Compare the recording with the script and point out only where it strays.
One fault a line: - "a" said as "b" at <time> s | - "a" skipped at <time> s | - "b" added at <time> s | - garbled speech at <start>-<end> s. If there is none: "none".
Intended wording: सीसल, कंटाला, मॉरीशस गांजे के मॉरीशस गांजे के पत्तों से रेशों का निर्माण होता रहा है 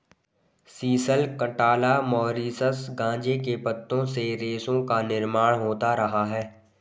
- "मॉरीशस गांजे के" skipped at 3.5 s